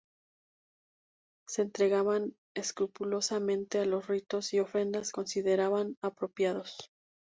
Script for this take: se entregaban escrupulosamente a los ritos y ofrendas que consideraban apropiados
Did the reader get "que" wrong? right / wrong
wrong